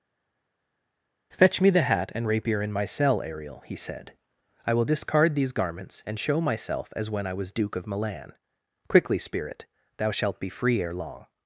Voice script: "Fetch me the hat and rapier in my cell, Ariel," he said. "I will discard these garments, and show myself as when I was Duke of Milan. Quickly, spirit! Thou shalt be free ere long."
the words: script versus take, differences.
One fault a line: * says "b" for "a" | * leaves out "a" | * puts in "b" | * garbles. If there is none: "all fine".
all fine